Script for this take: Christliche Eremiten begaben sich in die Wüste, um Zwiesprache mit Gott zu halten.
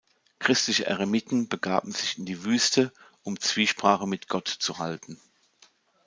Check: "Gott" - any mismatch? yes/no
no